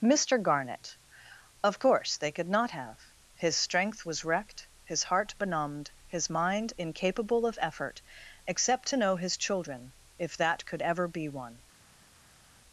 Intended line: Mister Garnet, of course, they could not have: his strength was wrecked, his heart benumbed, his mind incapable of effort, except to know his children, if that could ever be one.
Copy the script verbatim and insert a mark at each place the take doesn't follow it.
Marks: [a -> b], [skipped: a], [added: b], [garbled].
Mister Garnet, of course, they could not have: his strength was wrecked, his heart benumbed, his mind incapable of effort, except to know his children, if that could ever be one.